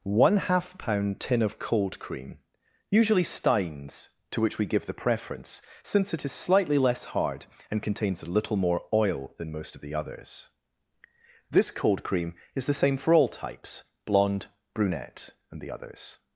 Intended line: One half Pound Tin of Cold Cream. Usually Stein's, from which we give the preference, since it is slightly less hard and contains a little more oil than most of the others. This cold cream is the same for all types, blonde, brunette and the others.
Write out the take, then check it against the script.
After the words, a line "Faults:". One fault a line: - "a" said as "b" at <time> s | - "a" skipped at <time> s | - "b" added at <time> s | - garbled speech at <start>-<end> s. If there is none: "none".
One half Pound Tin of Cold Cream. Usually Stein's, to which we give the preference, since it is slightly less hard and contains a little more oil than most of the others. This cold cream is the same for all types, blonde, brunette and the others.
Faults:
- "from" said as "to" at 4.3 s